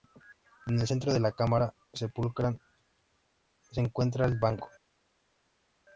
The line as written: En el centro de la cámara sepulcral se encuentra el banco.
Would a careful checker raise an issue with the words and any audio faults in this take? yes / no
no